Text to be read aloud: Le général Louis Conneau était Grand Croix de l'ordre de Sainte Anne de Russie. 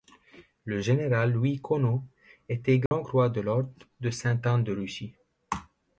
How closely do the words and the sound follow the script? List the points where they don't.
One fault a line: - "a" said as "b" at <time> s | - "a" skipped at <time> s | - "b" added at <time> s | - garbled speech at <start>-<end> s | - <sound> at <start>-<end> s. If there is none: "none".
- dropout at 2.9-2.9 s